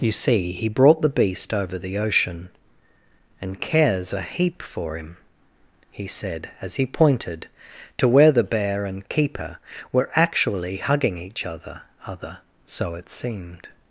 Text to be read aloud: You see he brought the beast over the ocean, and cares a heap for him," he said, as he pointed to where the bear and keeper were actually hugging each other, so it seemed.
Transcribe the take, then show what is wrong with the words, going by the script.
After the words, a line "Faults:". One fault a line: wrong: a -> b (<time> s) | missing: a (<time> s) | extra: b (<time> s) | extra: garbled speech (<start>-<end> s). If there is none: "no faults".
You see he brought the beast over the ocean, and cares a heap for him," he said, as he pointed to where the bear and keeper were actually hugging each other other, so it seemed.
Faults:
extra: other (12.1 s)